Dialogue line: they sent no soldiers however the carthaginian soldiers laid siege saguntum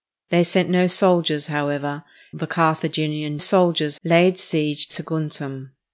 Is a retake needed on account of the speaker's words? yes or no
no